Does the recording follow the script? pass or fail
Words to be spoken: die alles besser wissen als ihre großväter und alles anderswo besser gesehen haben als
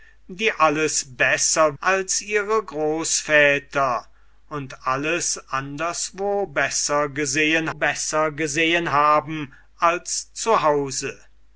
fail